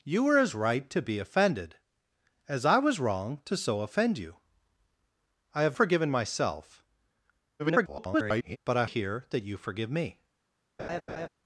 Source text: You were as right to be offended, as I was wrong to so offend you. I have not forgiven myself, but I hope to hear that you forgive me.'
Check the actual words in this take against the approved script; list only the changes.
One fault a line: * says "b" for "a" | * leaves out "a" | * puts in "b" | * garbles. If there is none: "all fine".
* leaves out "not"
* garbles
* leaves out "hope to"